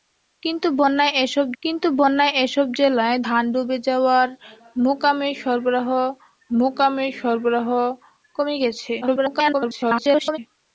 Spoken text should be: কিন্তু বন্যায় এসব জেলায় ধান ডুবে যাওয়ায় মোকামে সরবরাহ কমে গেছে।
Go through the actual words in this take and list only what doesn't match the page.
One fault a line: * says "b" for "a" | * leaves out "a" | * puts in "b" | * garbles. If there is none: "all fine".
* puts in "কিন্তু বন্যায় এসব"
* puts in "মোকামে সরবরাহ"
* garbles